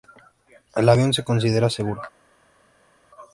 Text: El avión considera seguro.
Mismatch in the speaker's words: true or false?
true